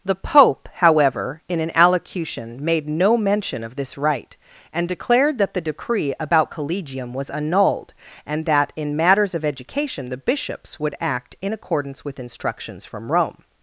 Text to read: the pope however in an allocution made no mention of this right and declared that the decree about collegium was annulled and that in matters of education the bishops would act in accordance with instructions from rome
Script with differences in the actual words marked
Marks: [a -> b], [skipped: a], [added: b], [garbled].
the pope however in an allocution made no mention of this right and declared that the decree about collegium was annulled and that in matters of education the bishops would act in accordance with instructions from rome